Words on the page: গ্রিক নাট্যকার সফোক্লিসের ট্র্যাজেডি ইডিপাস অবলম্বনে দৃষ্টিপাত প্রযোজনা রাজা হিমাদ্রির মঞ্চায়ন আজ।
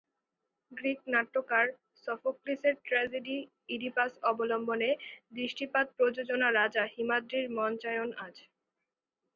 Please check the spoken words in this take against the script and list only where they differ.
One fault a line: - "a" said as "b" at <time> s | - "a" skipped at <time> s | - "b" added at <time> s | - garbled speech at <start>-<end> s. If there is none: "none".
none